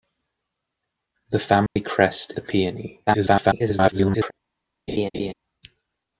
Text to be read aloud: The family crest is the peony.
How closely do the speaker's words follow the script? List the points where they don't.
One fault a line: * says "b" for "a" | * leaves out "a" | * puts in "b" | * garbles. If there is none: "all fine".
* leaves out "is"
* garbles